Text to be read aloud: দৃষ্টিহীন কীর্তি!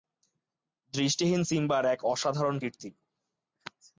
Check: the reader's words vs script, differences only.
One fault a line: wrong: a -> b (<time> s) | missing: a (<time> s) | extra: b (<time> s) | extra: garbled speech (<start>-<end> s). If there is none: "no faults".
extra: সিম্বার এক অসাধারণ (1.4 s)